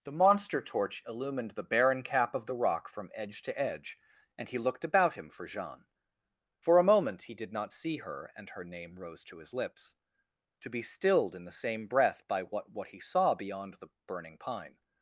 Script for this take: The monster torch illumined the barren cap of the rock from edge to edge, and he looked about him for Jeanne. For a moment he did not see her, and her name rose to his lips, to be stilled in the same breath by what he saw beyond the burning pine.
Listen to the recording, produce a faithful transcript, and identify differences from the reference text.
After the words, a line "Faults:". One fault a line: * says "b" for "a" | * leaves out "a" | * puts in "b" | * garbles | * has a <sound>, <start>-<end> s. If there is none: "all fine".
The monster torch illumined the barren cap of the rock from edge to edge, and he looked about him for Jeanne. For a moment he did not see her, and her name rose to his lips, to be stilled in the same breath by what what he saw beyond the burning pine.
Faults:
* puts in "what"